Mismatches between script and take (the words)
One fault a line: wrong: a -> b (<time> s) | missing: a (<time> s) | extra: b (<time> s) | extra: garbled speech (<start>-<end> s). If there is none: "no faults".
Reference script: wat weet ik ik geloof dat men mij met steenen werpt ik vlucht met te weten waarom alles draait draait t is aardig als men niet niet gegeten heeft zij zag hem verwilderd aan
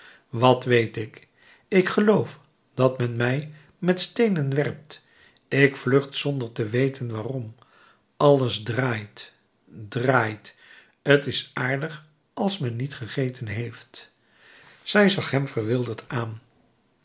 wrong: met -> zonder (6.1 s)
missing: niet (12.9 s)